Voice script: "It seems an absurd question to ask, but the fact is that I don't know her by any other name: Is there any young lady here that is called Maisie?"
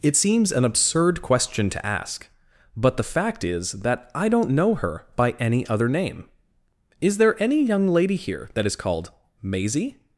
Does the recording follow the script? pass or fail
pass